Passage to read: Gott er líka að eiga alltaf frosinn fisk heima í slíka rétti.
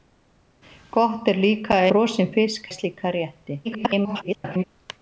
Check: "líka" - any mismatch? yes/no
no